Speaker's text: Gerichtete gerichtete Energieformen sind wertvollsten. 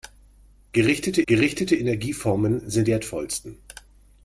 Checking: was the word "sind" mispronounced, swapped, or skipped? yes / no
no